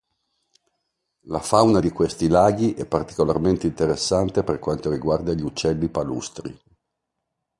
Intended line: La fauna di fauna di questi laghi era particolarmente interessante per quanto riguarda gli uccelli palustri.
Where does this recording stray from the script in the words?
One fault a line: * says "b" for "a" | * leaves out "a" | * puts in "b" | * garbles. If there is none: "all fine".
* leaves out "fauna di"
* says "è" for "era"